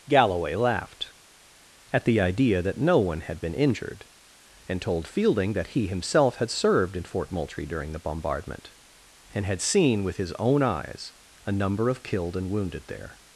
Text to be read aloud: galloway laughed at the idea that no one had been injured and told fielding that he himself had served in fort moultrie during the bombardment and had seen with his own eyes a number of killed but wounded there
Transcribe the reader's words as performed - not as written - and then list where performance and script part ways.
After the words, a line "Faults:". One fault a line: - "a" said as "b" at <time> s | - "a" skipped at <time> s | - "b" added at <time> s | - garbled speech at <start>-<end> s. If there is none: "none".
galloway laughed at the idea that no one had been injured and told fielding that he himself had served in fort moultrie during the bombardment and had seen with his own eyes a number of killed and wounded there
Faults:
- "but" said as "and" at 12.4 s